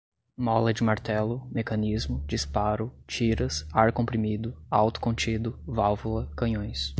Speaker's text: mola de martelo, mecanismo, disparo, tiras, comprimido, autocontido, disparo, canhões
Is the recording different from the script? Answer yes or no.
yes